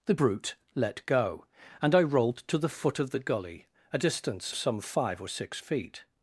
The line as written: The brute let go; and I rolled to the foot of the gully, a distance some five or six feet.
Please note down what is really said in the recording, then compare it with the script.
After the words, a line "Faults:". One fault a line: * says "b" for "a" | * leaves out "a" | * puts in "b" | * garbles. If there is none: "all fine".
The brute let go; and I rolled to the foot of the gully, a distance some five or six feet.
Faults:
all fine